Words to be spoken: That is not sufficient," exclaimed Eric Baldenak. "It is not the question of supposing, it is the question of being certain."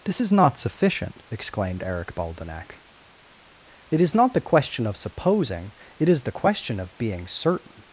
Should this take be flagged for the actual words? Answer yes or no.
yes